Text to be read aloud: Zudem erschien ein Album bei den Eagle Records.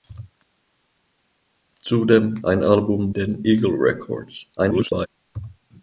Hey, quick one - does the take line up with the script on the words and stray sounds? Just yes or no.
no